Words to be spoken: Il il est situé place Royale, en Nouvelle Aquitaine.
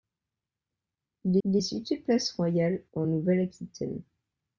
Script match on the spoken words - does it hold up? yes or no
yes